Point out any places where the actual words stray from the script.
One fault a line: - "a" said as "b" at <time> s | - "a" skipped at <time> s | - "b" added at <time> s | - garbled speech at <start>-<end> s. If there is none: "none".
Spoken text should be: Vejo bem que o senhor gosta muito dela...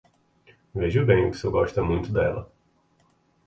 none